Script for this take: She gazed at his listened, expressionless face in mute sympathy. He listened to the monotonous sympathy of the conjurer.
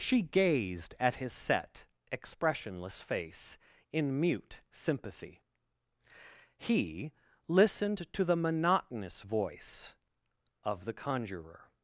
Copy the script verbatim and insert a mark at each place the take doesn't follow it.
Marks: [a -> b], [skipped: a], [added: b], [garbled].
She gazed at his [listened, -> set] expressionless face in mute sympathy. He listened to the monotonous [sympathy -> voice] of the conjurer.